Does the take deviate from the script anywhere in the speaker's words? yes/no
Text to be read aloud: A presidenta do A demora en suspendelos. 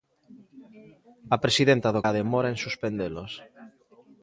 no